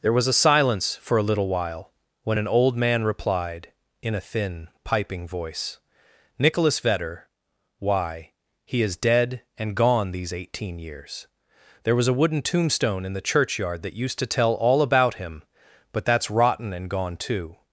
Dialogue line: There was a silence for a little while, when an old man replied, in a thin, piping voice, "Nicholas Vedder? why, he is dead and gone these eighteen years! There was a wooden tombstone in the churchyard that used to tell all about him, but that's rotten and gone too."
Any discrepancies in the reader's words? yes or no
no